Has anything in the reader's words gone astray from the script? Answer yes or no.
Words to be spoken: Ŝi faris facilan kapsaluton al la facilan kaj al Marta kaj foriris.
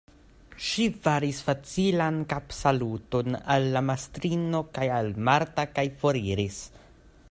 yes